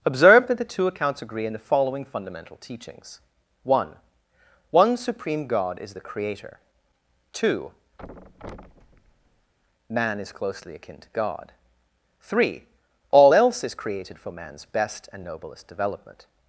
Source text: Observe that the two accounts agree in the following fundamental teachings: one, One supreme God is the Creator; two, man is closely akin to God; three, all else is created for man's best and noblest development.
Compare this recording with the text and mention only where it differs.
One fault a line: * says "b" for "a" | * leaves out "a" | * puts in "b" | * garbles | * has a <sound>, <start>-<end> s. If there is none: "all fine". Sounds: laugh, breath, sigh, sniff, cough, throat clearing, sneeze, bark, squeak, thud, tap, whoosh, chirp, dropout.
* has a thud, 8.0-9.5 s